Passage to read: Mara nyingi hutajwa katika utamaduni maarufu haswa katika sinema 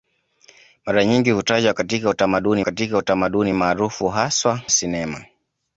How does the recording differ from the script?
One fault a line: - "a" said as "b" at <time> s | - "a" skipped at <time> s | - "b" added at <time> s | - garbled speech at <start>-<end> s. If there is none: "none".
- "katika utamaduni" added at 2.6 s
- "katika" skipped at 4.6 s